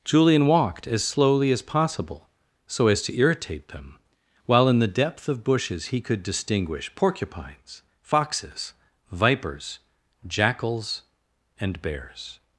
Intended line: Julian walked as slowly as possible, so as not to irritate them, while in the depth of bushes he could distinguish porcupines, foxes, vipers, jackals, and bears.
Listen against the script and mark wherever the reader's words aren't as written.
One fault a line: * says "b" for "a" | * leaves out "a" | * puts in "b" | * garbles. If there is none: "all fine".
* leaves out "not"